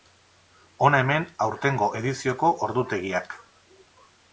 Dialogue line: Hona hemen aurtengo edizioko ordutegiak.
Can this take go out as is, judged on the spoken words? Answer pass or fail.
pass